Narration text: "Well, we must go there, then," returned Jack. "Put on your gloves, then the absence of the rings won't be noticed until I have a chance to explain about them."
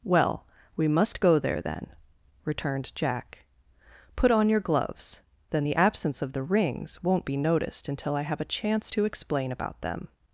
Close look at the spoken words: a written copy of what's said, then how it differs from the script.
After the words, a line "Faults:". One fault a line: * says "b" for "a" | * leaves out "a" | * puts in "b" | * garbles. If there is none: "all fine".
"Well, we must go there, then," returned Jack. "Put on your gloves, then the absence of the rings won't be noticed until I have a chance to explain about them."
Faults:
all fine